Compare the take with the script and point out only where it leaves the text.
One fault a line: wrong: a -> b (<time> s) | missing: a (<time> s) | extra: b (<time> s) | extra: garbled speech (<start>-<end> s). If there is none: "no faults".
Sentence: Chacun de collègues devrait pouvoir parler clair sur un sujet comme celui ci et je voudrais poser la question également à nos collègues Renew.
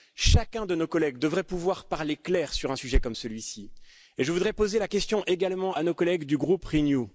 extra: nos (0.8 s)
extra: du groupe (6.3 s)